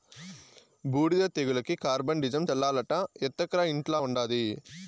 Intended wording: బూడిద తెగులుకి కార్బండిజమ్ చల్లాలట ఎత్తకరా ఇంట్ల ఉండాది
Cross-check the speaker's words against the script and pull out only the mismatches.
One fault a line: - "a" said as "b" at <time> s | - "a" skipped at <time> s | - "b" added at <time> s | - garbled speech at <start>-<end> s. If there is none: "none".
none